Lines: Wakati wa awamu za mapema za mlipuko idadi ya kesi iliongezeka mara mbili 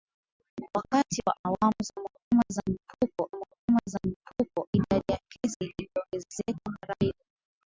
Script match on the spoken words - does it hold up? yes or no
no